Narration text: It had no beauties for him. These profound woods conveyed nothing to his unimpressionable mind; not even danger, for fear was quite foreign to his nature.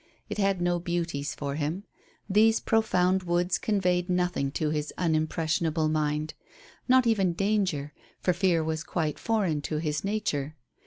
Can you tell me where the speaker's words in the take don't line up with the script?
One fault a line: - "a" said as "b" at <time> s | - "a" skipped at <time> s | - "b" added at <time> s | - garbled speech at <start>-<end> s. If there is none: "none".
none